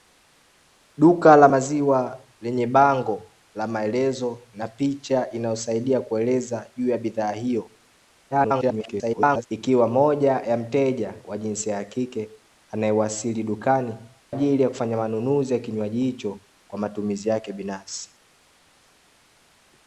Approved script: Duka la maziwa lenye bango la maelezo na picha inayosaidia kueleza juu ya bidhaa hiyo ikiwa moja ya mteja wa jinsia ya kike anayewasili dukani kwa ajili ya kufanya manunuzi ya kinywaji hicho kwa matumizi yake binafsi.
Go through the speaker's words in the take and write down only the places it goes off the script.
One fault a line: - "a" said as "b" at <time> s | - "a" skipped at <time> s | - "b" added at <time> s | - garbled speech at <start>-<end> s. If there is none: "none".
- garbled speech at 8.3-9.5 s
- "kwa" skipped at 13.9 s